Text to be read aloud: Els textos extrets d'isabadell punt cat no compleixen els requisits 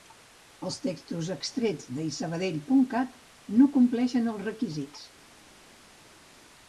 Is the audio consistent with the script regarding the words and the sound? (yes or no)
yes